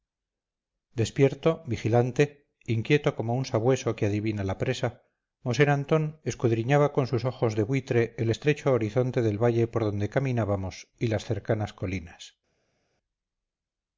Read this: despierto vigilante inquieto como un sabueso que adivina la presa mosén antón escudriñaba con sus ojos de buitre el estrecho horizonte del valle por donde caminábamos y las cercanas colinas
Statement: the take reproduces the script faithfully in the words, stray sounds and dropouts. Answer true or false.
true